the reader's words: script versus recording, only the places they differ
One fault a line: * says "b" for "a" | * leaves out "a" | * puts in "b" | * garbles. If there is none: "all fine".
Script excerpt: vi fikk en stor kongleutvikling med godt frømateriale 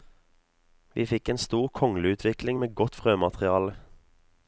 all fine